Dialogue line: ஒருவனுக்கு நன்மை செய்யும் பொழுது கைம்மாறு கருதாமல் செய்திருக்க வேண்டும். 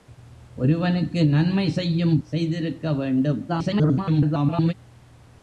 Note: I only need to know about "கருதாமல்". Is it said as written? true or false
false